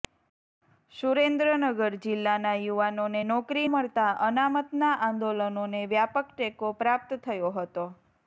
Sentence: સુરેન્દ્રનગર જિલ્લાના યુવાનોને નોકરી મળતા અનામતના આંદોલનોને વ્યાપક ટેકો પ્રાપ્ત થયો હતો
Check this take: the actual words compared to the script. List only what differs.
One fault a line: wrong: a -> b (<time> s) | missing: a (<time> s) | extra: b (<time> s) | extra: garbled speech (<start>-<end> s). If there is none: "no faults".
no faults